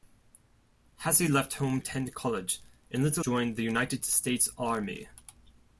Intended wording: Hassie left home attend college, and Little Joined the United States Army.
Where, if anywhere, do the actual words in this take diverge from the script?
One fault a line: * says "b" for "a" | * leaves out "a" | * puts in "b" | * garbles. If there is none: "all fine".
all fine